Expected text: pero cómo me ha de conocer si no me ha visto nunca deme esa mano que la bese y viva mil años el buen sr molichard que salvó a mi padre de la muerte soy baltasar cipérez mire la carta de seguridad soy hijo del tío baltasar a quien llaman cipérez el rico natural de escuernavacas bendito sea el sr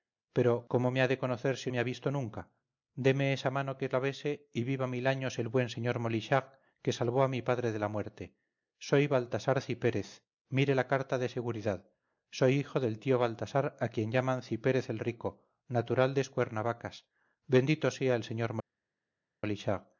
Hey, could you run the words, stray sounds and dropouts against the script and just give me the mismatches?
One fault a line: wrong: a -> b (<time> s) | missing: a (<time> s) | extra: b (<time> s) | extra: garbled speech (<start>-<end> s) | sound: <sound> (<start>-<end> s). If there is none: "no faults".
missing: no (1.7 s)